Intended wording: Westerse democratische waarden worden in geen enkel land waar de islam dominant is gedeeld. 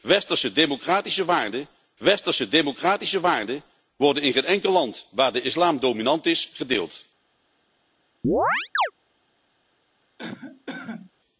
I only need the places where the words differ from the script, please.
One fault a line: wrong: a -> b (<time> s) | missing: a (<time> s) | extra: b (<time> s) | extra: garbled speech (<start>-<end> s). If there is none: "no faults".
extra: westerse democratische waarden (2.0 s)